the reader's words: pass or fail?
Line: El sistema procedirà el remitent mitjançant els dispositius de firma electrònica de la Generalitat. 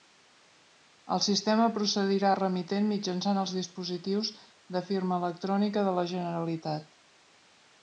pass